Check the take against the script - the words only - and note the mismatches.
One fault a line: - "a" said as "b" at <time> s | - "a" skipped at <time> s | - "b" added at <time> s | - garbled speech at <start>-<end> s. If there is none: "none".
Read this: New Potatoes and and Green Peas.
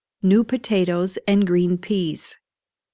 - "and" skipped at 1.5 s